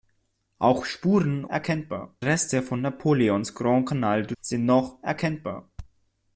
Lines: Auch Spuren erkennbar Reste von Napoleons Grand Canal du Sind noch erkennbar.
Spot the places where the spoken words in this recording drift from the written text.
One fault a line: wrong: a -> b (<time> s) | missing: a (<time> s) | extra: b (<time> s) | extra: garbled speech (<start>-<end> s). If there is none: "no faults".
no faults